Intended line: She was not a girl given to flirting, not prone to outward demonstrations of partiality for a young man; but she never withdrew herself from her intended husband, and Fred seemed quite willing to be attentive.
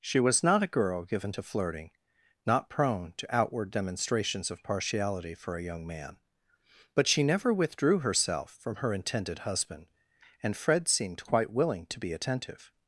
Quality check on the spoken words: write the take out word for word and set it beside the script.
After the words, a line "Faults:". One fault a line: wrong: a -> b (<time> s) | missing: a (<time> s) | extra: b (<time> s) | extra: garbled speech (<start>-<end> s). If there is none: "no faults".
She was not a girl given to flirting, not prone to outward demonstrations of partiality for a young man; but she never withdrew herself from her intended husband, and Fred seemed quite willing to be attentive.
Faults:
no faults